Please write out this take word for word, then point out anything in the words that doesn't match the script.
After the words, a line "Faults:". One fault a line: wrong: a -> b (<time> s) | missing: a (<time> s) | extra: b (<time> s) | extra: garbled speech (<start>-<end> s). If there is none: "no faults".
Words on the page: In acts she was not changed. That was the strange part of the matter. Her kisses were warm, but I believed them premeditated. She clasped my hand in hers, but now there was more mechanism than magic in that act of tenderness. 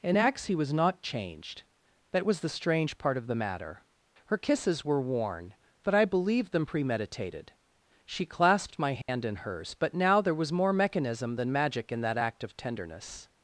In acts he was not changed. That was the strange part of the matter. Her kisses were worn, but I believed them premeditated. She clasped my hand in hers, but now there was more mechanism than magic in that act of tenderness.
Faults:
wrong: she -> he (0.5 s)
wrong: warm -> worn (5.0 s)